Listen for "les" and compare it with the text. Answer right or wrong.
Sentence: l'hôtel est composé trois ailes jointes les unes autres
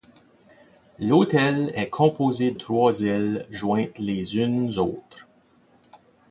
right